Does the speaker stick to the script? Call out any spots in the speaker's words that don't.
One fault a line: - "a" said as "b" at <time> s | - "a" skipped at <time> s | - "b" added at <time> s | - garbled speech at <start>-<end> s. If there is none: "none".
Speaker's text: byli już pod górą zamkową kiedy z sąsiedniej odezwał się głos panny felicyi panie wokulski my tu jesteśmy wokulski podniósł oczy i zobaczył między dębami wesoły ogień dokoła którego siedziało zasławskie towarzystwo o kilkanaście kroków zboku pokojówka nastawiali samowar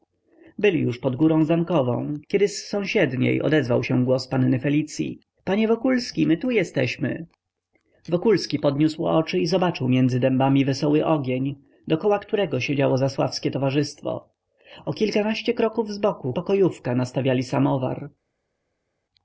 none